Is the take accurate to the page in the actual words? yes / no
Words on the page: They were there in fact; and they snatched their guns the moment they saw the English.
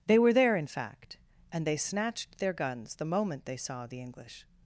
yes